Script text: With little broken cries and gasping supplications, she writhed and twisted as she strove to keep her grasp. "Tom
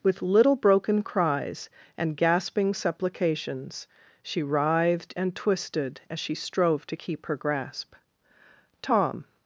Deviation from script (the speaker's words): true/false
false